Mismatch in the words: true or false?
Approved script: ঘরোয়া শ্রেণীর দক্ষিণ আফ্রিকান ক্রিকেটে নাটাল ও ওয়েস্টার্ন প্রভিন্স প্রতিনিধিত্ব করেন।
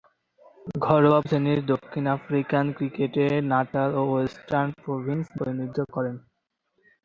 false